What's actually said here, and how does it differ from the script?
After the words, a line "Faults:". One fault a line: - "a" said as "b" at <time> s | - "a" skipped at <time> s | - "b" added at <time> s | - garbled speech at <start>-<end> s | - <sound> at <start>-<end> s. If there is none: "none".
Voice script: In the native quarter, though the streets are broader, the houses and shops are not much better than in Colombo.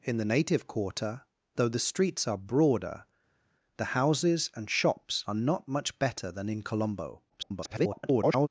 In the native quarter, though the streets are broader, the houses and shops are not much better than in Colombo. [garbled]
Faults:
- garbled speech at 7.3-8.5 s